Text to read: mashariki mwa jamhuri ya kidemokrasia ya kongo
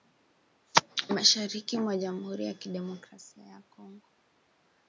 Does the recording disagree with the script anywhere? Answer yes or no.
no